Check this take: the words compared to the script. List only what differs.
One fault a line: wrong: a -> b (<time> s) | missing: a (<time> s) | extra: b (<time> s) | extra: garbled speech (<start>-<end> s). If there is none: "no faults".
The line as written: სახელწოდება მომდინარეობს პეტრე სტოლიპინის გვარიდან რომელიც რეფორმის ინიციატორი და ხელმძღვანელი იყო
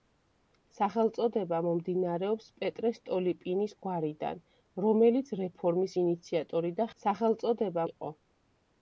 wrong: ხელმძღვანელი -> სახელწოდება (7.0 s)